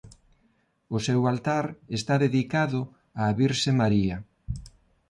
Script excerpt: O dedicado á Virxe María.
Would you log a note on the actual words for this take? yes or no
yes